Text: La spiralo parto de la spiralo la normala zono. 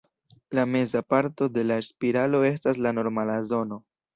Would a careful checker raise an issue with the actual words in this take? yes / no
yes